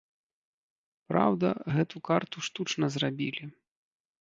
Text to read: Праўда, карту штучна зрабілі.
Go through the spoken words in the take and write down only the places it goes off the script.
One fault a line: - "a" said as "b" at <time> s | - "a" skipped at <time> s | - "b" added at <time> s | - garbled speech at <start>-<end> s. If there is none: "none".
- "гэту" added at 1.7 s